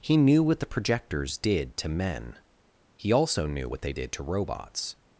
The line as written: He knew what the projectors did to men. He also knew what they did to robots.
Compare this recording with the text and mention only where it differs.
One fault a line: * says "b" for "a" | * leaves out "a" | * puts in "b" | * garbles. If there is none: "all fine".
all fine